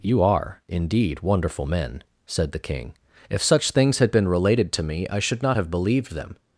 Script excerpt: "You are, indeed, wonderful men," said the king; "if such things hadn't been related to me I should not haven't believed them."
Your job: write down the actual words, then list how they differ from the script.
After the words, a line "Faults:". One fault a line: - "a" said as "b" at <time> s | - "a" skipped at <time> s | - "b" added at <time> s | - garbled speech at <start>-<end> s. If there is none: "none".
"You are, indeed, wonderful men," said the king; "if such things had been related to me I should not have believed them."
Faults:
- "hadn't" said as "had" at 4.0 s
- "haven't" said as "have" at 5.6 s